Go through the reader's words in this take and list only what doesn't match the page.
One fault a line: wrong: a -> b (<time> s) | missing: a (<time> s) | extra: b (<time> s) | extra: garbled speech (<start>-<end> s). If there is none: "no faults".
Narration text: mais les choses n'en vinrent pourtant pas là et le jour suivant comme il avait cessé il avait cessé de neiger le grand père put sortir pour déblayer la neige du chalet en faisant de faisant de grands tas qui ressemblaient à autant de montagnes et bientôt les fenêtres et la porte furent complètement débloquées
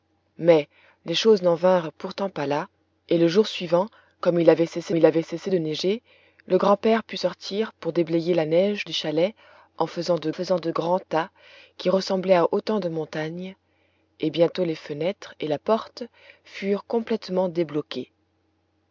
no faults